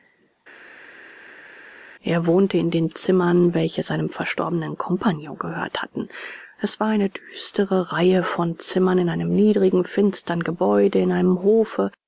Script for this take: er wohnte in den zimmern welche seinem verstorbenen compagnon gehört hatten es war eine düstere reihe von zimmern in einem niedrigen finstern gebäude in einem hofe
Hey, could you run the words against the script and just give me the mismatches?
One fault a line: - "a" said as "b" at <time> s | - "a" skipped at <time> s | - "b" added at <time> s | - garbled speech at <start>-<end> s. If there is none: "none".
none